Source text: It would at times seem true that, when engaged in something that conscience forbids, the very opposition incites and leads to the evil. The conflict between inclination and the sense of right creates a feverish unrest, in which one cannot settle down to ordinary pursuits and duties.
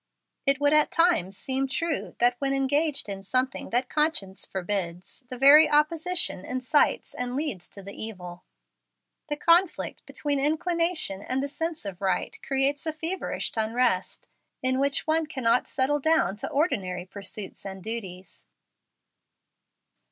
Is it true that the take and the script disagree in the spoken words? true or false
false